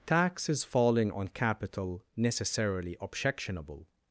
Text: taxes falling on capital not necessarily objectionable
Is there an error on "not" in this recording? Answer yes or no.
yes